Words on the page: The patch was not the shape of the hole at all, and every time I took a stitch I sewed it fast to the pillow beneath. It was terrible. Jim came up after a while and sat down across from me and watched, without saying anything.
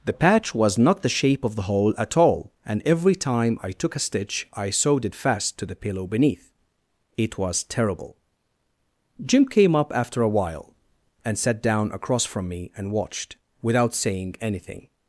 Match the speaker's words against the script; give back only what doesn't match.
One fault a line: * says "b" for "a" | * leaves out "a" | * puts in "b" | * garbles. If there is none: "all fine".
all fine